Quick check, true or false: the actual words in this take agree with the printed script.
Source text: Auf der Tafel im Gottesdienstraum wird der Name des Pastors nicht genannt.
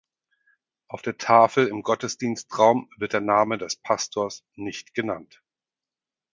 true